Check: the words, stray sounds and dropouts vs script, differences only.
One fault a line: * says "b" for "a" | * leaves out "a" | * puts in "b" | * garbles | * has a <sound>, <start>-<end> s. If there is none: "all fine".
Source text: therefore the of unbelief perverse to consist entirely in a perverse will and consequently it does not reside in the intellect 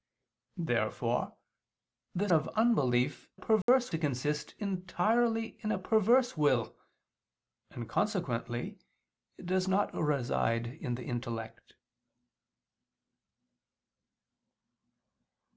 * has a dropout, 3.6-3.7 s